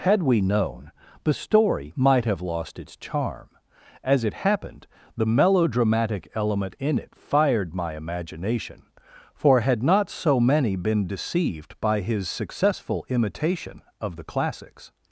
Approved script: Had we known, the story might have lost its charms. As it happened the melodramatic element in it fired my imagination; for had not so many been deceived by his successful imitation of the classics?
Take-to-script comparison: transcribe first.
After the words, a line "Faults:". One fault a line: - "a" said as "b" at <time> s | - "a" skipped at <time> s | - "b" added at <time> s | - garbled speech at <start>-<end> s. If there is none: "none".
Had we known, the story might have lost its charm. As it happened the melodramatic element in it fired my imagination; for had not so many been deceived by his successful imitation of the classics?
Faults:
- "charms" said as "charm" at 3.0 s